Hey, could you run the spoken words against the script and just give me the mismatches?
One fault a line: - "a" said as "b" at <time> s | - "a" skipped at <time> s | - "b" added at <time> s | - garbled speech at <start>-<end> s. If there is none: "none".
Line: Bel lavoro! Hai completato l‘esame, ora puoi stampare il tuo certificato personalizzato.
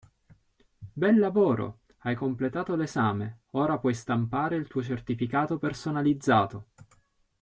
none